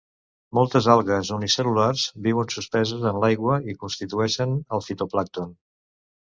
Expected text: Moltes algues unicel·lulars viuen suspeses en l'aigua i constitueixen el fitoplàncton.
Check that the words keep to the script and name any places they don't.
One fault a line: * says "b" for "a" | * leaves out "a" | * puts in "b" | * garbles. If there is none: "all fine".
all fine